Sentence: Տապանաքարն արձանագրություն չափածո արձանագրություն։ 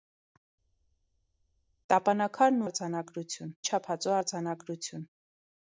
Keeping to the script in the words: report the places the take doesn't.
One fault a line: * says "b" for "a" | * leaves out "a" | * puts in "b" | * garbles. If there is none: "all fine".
all fine